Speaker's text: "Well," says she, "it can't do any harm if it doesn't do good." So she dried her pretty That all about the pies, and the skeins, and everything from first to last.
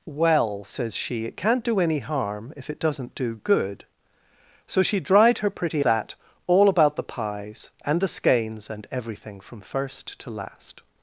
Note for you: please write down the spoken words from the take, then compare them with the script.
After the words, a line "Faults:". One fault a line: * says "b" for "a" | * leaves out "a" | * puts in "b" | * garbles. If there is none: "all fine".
"Well," says she, "it can't do any harm if it doesn't do good." So she dried her pretty That all about the pies, and the skeins, and everything from first to last.
Faults:
all fine